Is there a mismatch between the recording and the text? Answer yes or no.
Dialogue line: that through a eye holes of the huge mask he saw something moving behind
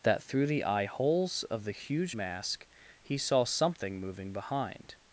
yes